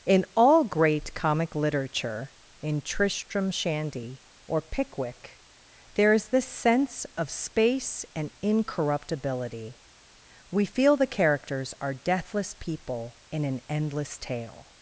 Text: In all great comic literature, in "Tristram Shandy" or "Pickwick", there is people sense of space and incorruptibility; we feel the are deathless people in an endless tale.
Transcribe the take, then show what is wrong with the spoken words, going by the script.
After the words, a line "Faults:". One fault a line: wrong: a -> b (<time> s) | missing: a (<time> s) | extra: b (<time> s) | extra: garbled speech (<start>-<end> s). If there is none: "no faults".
In all great comic literature, in "Tristram Shandy" or "Pickwick", there is this sense of space and incorruptibility; we feel the characters are deathless people in an endless tale.
Faults:
wrong: people -> this (6.3 s)
extra: characters (11.1 s)